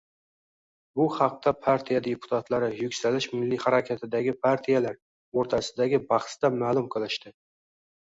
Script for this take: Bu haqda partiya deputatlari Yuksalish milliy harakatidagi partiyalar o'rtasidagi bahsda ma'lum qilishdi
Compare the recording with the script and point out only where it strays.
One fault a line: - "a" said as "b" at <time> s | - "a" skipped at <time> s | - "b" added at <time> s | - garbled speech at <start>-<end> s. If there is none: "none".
none